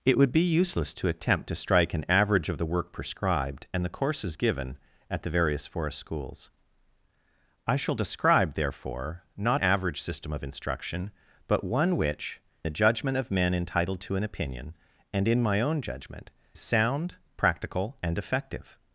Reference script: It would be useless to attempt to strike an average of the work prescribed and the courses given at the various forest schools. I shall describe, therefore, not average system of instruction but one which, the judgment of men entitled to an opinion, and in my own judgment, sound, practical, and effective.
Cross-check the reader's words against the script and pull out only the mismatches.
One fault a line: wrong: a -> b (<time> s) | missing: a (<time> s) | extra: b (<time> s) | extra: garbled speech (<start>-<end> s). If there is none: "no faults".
no faults